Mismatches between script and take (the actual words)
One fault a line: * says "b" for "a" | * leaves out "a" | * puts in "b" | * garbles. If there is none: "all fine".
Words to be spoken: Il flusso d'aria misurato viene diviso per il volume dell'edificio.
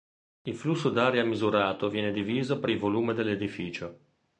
all fine